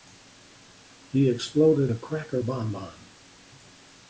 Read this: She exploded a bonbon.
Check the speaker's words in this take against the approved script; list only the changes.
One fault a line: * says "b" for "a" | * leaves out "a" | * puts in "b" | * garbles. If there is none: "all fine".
* says "He" for "She"
* puts in "cracker"